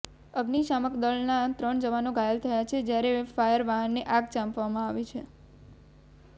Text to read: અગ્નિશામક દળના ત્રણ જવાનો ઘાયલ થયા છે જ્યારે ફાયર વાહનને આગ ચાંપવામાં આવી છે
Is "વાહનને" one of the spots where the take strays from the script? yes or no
no